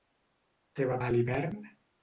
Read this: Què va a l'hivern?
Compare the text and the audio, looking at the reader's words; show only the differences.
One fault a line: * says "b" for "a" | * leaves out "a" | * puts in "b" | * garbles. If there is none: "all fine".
all fine